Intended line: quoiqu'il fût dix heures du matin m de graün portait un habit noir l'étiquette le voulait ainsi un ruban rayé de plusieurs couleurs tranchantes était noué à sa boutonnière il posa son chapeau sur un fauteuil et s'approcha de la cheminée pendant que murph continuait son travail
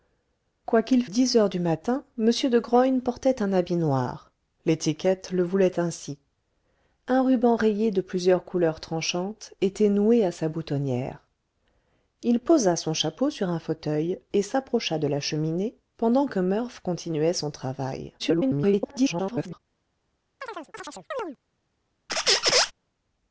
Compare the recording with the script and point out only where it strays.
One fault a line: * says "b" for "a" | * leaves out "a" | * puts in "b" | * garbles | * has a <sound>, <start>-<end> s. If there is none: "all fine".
* leaves out "fût"
* garbles
* has a chirp, 20.4-21.4 s
* has a squeak, 22.1-22.7 s